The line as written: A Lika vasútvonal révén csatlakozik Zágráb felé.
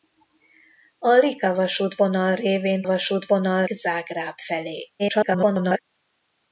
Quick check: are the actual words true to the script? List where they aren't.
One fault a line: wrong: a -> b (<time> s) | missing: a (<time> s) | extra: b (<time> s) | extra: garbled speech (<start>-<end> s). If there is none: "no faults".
wrong: csatlakozik -> vasútvonal (2.8 s)
extra: garbled speech (5.0-5.8 s)